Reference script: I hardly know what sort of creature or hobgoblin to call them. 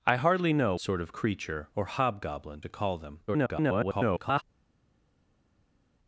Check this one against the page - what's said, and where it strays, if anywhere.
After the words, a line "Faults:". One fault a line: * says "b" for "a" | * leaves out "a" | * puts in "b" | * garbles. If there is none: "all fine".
I hardly know sort of creature or hobgoblin to call them. [garbled]
Faults:
* leaves out "what"
* garbles